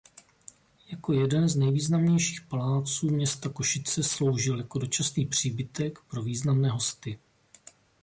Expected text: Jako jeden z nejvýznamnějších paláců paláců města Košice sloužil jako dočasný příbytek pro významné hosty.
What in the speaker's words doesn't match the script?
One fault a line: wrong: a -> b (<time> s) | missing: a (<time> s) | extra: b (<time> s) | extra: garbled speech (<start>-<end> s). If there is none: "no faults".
missing: paláců (3.1 s)